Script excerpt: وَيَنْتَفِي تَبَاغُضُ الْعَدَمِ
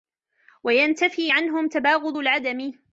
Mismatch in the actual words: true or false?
true